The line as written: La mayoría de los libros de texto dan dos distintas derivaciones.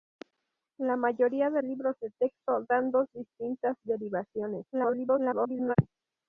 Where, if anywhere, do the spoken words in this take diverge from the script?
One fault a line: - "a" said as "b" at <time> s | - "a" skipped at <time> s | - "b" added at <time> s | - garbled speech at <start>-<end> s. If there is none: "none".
- "los" skipped at 1.6 s
- garbled speech at 4.7-5.8 s